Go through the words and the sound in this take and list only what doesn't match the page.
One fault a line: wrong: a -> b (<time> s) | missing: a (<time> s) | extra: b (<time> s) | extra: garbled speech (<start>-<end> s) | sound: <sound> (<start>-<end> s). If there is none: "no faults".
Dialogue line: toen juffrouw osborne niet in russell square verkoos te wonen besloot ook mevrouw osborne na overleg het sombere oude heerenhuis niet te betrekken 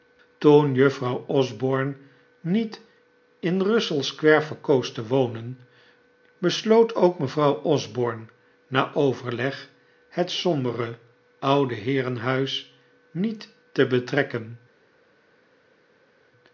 no faults